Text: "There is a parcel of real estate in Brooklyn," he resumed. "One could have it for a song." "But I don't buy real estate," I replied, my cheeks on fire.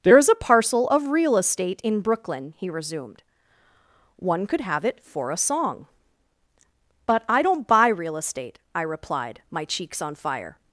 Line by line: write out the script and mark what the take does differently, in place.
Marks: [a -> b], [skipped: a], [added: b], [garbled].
"There is a parcel of real estate in Brooklyn," he resumed. "One could have it for a song." "But I don't buy real estate," I replied, my cheeks on fire.